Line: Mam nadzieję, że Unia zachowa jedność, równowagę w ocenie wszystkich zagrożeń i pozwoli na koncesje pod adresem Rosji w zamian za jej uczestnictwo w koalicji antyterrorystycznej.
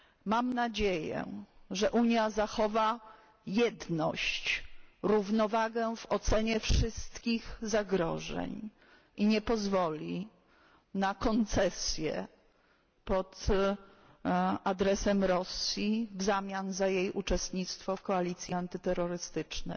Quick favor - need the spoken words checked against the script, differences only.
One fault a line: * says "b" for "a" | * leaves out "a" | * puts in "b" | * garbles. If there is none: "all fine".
* puts in "nie"